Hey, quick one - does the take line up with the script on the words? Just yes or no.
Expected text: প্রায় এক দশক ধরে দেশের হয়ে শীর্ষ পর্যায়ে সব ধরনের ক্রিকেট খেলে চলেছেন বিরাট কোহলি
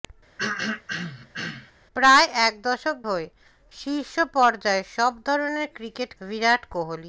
no